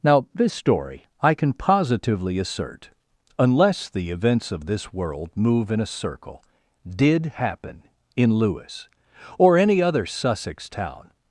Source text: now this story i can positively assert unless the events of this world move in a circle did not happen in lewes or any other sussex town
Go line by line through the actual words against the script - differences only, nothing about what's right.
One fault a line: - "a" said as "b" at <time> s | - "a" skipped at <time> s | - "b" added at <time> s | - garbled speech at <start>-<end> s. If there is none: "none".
- "not" skipped at 7.3 s